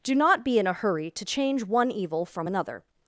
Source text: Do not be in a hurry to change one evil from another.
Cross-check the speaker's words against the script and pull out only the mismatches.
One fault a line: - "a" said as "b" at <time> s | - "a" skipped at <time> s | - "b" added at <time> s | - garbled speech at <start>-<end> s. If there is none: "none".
none